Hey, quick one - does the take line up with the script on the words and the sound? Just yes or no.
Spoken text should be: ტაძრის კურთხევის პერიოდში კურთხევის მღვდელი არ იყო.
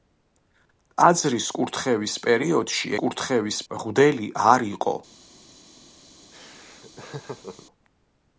no